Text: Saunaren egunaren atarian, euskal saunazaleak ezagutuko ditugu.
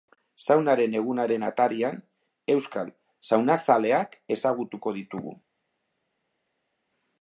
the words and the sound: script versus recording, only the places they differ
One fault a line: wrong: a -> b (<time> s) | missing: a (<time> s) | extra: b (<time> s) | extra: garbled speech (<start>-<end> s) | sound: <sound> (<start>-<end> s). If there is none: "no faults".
no faults